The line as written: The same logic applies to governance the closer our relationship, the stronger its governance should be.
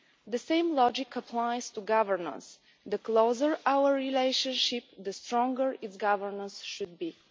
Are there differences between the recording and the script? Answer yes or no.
no